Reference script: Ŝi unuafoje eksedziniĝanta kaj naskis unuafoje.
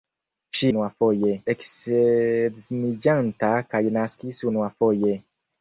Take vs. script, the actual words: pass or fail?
pass